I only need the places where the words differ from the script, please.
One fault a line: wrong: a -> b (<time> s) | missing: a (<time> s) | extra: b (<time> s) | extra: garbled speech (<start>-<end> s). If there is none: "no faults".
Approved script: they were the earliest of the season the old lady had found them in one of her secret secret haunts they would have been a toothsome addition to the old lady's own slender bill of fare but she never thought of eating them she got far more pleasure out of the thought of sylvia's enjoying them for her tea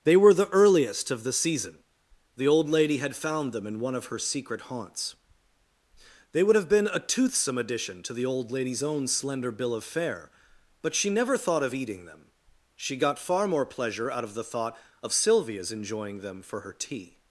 missing: secret (4.6 s)